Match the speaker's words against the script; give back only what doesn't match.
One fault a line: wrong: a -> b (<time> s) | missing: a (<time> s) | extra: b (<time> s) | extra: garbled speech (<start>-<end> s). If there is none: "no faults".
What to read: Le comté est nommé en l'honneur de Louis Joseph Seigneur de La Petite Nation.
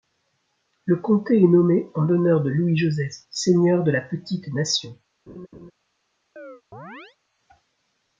no faults